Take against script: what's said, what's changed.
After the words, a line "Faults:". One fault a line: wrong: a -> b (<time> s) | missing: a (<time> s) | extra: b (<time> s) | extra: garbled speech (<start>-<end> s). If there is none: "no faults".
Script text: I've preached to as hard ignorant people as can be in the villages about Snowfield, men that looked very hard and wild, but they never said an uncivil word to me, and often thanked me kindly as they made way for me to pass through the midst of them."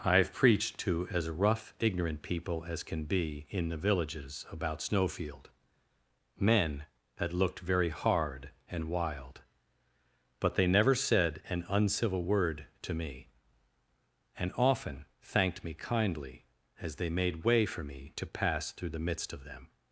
I've preached to as rough ignorant people as can be in the villages about Snowfield, men that looked very hard and wild, but they never said an uncivil word to me, and often thanked me kindly as they made way for me to pass through the midst of them."
Faults:
wrong: hard -> rough (1.3 s)